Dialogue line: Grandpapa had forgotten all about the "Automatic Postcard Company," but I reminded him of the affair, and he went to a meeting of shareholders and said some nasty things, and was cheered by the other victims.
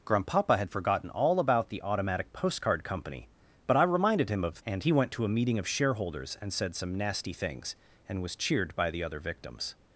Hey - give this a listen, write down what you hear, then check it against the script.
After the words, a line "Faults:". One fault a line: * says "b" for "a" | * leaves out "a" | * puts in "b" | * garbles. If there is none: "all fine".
Grandpapa had forgotten all about the "Automatic Postcard Company," but I reminded him of and he went to a meeting of shareholders and said some nasty things, and was cheered by the other victims.
Faults:
* leaves out "the affair"